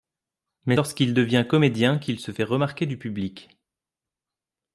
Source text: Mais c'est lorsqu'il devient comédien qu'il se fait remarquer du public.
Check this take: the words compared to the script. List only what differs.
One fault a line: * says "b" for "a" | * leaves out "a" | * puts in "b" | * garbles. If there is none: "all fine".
* leaves out "c'est"